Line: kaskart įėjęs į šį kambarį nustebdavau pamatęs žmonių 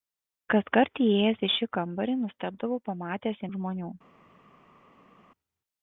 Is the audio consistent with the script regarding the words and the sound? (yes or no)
yes